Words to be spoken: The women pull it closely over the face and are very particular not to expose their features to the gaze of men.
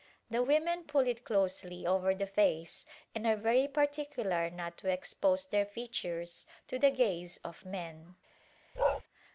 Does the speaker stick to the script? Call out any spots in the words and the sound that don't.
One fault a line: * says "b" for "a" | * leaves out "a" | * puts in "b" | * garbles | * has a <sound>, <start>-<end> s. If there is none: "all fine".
* has a bark, 8.8-9.0 s